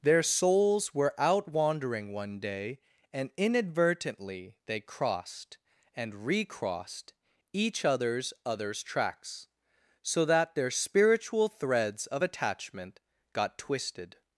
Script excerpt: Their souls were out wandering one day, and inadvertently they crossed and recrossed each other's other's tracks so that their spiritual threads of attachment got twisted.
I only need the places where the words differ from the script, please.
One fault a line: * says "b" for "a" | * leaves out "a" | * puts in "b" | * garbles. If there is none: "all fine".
all fine